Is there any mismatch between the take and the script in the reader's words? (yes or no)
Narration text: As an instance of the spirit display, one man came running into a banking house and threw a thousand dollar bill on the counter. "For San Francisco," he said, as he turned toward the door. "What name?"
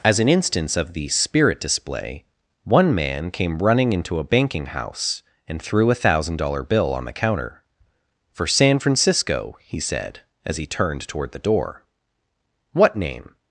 no